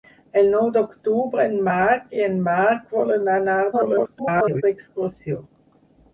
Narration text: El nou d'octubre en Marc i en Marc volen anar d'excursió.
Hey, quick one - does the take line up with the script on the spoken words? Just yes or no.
no